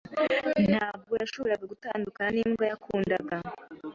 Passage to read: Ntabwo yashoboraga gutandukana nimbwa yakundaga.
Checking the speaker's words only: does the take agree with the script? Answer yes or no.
yes